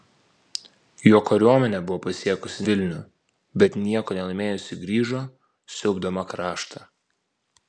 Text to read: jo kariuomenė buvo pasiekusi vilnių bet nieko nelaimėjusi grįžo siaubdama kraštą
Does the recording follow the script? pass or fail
pass